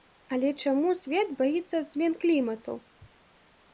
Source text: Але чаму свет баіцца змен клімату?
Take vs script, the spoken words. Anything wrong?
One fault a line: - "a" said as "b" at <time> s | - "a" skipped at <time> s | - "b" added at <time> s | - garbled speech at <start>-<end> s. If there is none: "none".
none